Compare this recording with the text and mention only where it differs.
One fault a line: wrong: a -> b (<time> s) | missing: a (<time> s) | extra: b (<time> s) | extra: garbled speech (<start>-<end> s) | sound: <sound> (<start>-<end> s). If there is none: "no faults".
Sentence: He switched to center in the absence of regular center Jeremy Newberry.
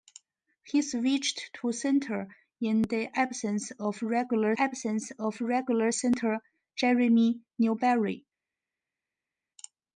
extra: absence of regular (4.6 s)